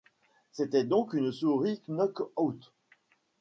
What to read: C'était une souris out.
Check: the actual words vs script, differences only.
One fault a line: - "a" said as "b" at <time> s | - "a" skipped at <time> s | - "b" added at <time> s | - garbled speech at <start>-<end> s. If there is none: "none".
- "donc" added at 0.8 s
- "knock" added at 1.9 s